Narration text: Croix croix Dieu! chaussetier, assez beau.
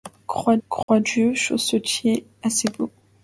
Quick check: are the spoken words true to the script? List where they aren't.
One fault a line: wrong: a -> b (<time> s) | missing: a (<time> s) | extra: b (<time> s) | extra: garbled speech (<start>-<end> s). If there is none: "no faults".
no faults